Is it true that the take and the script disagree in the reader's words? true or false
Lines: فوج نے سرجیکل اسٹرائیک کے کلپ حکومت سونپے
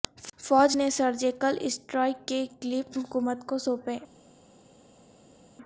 true